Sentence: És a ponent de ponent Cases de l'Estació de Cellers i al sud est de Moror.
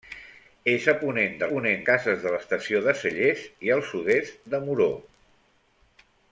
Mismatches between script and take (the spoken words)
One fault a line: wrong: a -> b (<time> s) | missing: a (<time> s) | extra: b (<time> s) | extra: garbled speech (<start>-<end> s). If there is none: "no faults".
no faults